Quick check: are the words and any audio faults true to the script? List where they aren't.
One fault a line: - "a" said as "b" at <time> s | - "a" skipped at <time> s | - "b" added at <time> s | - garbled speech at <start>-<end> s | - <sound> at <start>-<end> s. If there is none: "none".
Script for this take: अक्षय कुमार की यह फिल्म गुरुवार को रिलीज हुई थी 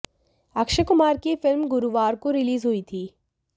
none